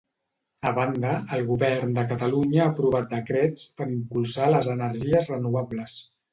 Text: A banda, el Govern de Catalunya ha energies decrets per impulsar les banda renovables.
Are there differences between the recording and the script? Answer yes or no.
yes